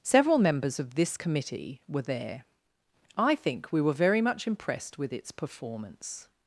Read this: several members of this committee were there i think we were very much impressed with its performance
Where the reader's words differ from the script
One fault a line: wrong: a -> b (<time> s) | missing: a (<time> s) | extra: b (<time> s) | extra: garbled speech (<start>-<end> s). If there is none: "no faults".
no faults